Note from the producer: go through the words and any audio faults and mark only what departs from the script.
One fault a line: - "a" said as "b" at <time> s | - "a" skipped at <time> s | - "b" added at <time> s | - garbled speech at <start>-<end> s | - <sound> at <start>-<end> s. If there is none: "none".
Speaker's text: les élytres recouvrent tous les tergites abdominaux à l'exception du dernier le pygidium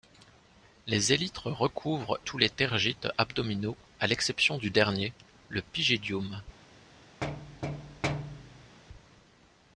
- thud at 7.2-8.8 s